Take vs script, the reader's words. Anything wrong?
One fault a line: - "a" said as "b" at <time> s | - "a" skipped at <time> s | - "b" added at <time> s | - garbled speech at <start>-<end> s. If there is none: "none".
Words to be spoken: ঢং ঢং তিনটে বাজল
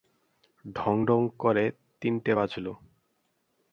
- "করে" added at 1.4 s